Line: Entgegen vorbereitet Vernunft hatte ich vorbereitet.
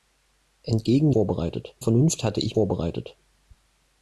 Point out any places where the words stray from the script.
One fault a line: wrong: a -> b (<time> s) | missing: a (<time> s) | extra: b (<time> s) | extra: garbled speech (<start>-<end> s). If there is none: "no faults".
no faults